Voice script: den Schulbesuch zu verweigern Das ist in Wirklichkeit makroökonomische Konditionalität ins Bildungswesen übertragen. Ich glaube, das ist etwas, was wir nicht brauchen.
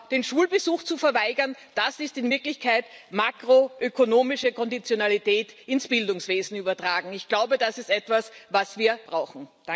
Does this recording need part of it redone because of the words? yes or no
yes